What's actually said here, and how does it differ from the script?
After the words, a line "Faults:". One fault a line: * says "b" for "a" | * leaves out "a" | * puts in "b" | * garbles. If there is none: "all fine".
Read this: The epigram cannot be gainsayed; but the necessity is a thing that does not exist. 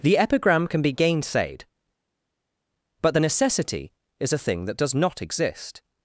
The epigram can be gainsayed; but the necessity is a thing that does not exist.
Faults:
* says "can" for "cannot"